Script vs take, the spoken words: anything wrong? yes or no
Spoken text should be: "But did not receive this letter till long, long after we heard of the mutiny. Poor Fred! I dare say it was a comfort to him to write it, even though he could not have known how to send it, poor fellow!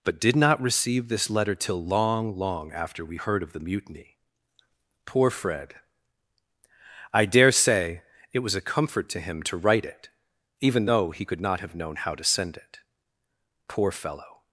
no